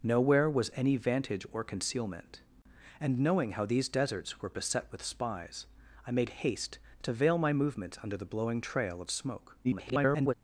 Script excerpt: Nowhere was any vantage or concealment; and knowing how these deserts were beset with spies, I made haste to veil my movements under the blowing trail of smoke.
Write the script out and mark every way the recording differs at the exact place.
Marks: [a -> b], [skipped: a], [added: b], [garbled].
Nowhere was any vantage or concealment; and knowing how these deserts were beset with spies, I made haste to veil my movements under the blowing trail of smoke. [garbled]